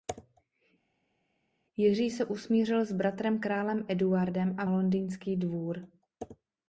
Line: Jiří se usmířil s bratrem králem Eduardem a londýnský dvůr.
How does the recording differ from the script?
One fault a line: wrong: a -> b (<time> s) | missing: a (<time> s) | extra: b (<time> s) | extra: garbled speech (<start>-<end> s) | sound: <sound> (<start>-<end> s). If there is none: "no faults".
no faults